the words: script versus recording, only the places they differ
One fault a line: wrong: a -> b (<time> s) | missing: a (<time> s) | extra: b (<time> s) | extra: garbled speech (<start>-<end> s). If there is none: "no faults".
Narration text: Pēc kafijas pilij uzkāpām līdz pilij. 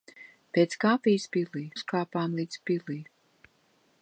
no faults